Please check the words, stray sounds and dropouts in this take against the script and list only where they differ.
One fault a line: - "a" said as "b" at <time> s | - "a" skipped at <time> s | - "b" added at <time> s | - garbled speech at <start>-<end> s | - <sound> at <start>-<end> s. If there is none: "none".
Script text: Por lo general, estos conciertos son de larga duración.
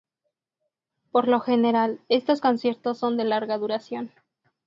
none